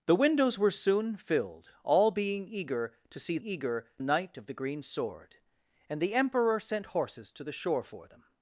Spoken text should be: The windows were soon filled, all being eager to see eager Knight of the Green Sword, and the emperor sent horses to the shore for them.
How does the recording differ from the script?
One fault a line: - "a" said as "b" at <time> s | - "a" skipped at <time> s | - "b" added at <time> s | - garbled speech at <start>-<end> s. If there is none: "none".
none